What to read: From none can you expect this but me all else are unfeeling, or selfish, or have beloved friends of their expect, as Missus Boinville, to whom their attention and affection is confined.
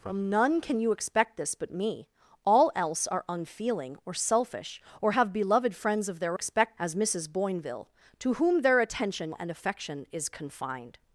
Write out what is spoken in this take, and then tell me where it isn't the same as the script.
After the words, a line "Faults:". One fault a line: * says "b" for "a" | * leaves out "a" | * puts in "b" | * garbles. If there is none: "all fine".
From none can you expect this but me all else are unfeeling, or selfish, or have beloved friends of their expect, as Missus Boinville, to whom their attention and affection is confined.
Faults:
all fine